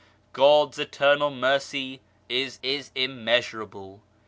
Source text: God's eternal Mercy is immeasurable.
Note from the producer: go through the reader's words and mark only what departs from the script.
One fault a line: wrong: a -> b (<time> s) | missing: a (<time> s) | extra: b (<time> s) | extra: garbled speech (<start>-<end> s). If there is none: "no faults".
extra: is (2.6 s)